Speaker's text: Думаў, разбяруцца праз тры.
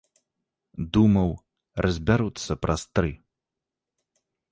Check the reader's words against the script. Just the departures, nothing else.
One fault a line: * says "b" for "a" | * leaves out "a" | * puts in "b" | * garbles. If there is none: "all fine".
all fine